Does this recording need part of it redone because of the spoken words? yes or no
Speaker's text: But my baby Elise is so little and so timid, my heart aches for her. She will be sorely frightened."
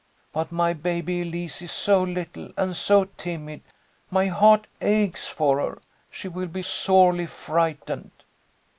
no